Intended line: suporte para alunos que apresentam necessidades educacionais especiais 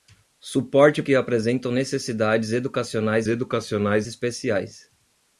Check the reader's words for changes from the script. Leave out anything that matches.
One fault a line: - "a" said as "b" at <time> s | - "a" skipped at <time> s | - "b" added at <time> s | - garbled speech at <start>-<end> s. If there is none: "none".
- "para alunos" skipped at 1.0 s
- "educacionais" added at 3.3 s